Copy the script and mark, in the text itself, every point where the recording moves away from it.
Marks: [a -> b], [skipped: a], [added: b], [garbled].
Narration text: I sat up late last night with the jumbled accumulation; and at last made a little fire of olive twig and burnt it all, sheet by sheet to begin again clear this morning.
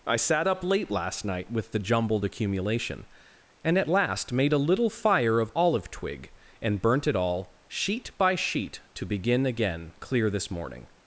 I sat up late last night with the jumbled accumulation; and at last made a little fire of olive twig and burnt it all, sheet by sheet to begin again clear this morning.